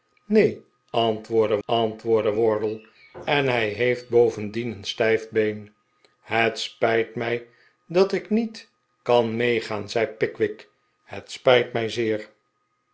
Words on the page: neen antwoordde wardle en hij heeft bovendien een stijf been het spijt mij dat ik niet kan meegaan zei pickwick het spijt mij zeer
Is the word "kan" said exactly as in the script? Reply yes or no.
yes